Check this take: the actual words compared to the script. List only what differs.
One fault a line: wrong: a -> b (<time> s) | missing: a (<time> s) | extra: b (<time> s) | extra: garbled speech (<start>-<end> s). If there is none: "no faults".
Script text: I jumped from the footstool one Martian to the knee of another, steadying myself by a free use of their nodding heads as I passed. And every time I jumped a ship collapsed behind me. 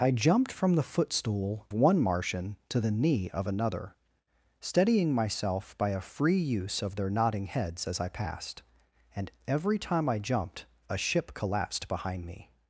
no faults